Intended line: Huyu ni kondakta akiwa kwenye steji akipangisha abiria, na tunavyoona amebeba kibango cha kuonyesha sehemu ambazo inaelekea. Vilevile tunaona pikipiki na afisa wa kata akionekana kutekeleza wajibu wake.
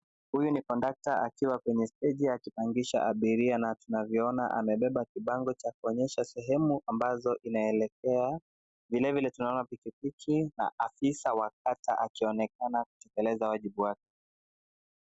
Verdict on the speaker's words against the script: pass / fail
pass